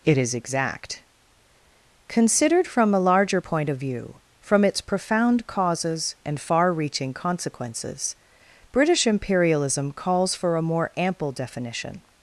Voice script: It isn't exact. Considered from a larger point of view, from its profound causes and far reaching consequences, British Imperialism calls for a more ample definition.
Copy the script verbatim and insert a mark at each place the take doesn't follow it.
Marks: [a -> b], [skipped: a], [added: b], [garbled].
It [isn't -> is] exact. Considered from a larger point of view, from its profound causes and far reaching consequences, British Imperialism calls for a more ample definition.